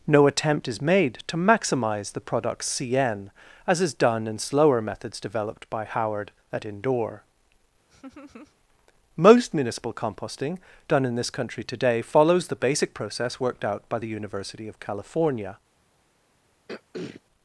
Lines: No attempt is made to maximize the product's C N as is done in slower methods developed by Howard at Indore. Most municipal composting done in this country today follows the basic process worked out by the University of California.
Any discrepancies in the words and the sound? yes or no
yes